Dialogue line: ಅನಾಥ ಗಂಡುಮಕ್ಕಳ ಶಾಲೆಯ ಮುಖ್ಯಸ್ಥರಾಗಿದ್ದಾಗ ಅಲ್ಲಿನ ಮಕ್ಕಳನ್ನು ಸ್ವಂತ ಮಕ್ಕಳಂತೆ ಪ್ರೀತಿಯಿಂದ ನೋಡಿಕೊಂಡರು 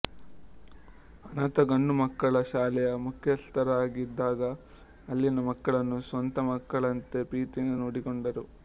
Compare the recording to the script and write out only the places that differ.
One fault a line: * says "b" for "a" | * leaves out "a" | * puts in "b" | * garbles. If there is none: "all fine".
all fine